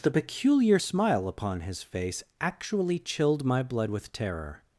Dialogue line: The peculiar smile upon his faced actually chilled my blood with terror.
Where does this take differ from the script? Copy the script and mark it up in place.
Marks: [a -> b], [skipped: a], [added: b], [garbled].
The peculiar smile upon his [faced -> face] actually chilled my blood with terror.